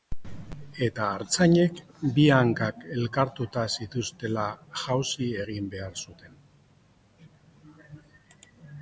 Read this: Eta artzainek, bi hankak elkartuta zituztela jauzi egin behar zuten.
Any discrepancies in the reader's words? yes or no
no